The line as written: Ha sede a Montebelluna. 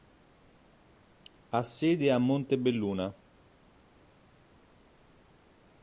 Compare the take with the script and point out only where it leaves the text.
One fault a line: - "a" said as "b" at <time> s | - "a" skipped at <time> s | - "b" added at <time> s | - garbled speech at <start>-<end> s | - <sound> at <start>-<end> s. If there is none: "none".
none